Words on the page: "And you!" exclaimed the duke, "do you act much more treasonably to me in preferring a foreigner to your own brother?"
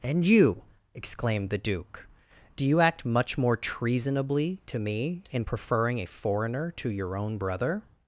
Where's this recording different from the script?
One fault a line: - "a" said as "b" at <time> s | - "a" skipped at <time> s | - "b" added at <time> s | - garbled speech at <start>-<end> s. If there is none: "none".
none